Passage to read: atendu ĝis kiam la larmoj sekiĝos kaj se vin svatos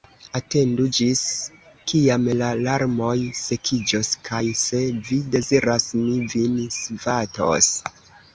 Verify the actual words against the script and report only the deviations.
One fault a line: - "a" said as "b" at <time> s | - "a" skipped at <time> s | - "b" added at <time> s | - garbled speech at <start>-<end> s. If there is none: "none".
- "vi deziras mi" added at 5.1 s